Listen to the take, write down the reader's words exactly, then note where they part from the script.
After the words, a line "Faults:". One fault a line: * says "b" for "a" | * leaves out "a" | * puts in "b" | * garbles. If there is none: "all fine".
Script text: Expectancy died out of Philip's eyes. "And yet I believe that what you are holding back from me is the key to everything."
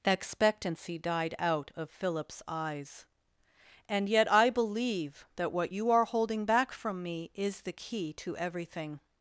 Expectancy died out of Philip's eyes. "And yet I believe that what you are holding back from me is the key to everything."
Faults:
all fine